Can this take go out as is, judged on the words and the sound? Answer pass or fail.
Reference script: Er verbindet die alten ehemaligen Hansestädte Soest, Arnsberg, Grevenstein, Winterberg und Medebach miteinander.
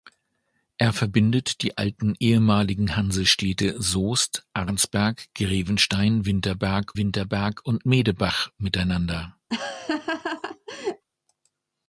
fail